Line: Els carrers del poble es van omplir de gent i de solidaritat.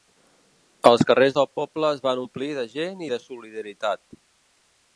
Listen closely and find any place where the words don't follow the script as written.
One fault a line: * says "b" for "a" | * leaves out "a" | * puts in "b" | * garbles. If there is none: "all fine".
all fine